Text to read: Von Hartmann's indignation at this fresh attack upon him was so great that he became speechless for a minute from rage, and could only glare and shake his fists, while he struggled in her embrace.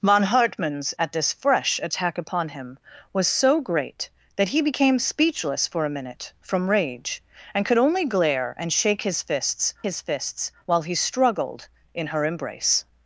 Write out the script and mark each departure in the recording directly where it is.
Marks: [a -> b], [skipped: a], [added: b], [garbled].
Von Hartmann's [skipped: indignation] at this fresh attack upon him was so great that he became speechless for a minute from rage, and could only glare and shake his fists, [added: his fists] while he struggled in her embrace.